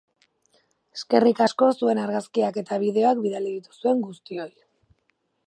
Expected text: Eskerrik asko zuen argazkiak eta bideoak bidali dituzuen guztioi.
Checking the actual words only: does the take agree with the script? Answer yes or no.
yes